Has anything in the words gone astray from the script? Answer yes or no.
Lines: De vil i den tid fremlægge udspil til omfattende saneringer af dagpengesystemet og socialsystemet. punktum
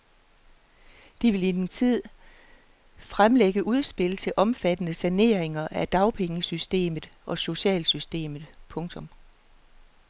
no